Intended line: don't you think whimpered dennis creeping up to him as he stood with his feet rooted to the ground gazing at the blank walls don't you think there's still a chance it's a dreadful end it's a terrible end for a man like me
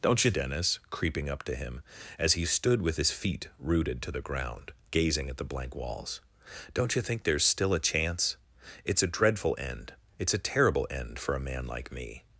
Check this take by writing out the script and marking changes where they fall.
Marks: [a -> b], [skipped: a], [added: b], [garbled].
don't you [skipped: think whimpered] dennis creeping up to him as he stood with his feet rooted to the ground gazing at the blank walls don't you think there's still a chance it's a dreadful end it's a terrible end for a man like me